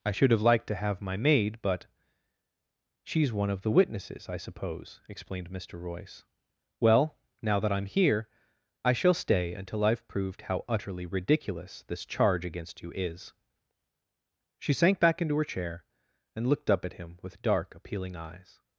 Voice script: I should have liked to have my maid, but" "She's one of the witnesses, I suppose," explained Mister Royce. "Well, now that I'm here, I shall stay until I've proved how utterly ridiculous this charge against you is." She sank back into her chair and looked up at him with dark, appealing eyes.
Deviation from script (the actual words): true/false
false